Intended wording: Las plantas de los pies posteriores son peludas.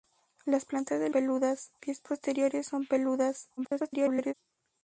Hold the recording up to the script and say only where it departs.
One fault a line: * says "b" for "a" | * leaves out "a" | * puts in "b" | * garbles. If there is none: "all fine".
* says "peludas" for "los"
* garbles